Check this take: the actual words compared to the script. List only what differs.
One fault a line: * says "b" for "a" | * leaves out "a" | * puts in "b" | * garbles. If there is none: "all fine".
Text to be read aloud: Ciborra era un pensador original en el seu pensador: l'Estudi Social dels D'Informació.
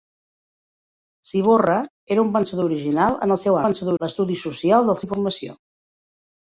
all fine